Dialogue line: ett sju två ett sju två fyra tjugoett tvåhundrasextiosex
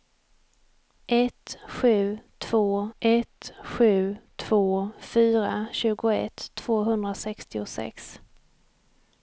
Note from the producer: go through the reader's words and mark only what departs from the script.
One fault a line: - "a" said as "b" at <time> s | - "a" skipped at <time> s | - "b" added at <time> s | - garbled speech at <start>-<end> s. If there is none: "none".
none